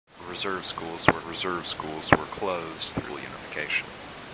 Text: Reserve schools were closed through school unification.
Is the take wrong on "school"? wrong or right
wrong